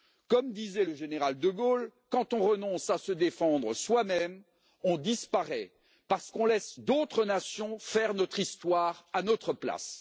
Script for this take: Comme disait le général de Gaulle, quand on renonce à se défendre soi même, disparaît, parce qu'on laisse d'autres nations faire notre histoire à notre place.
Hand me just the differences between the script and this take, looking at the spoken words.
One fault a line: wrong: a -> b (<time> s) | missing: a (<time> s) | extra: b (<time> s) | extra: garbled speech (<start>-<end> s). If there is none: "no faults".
extra: on (4.8 s)